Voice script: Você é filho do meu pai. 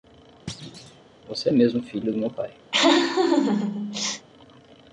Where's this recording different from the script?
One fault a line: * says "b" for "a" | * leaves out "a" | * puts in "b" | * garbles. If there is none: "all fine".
* puts in "mesmo"